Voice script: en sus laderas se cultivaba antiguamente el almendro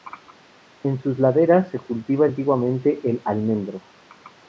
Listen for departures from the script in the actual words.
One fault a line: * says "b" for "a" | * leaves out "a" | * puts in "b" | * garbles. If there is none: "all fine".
all fine